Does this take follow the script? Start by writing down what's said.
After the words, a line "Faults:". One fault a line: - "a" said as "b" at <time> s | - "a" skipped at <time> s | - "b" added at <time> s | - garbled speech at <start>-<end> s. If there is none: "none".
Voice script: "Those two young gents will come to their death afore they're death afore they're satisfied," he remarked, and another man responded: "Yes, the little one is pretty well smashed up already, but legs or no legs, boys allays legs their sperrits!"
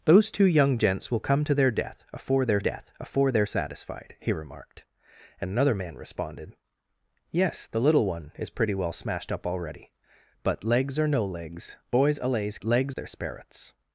"Those two young gents will come to their death afore they're death afore they're satisfied," he remarked, and another man responded: "Yes, the little one is pretty well smashed up already, but legs or no legs, boys allays legs their sperrits!"
Faults:
none